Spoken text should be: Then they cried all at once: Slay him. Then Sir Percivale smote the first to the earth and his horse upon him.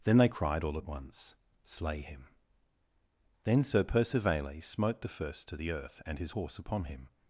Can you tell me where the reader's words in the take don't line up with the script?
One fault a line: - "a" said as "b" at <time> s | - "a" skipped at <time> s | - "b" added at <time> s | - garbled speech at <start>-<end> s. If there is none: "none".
none